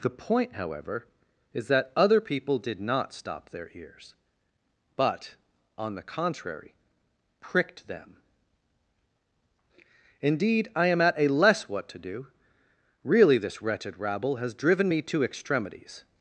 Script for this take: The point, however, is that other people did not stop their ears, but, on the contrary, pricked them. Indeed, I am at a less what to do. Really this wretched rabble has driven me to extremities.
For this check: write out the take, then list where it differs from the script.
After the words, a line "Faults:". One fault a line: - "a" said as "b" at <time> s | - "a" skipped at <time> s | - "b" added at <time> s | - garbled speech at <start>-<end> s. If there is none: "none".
The point, however, is that other people did not stop their ears, but, on the contrary, pricked them. Indeed, I am at a less what to do. Really this wretched rabble has driven me to extremities.
Faults:
none